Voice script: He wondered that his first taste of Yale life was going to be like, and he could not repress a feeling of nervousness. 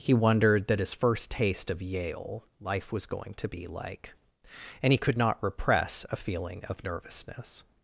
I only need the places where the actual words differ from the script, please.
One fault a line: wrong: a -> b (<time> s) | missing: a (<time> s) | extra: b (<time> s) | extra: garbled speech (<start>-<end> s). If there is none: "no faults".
no faults